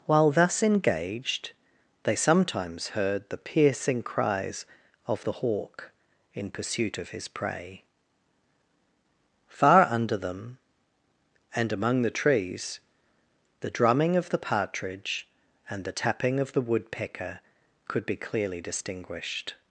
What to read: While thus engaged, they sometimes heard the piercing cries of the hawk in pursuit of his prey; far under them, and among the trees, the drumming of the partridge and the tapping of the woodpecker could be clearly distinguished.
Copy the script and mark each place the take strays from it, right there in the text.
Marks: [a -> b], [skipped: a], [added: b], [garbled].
While thus engaged, they sometimes heard the piercing cries of the hawk in pursuit of his prey; far under them, and among the trees, the drumming of the partridge and the tapping of the woodpecker could be clearly distinguished.